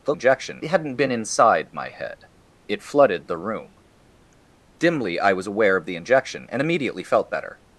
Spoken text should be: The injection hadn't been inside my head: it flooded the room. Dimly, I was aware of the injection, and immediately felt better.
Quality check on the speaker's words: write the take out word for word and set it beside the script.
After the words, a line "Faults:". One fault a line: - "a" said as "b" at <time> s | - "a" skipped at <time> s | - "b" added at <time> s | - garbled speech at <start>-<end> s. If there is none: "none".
The injection hadn't been inside my head: it flooded the room. Dimly, I was aware of the injection, and immediately felt better.
Faults:
none